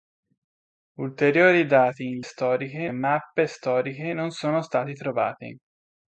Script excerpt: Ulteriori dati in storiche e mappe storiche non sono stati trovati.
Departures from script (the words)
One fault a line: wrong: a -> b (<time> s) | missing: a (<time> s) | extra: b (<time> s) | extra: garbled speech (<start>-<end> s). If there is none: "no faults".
no faults